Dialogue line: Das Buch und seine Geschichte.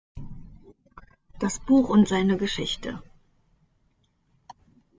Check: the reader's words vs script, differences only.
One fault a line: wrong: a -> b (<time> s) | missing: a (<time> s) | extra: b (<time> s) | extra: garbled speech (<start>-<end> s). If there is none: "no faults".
no faults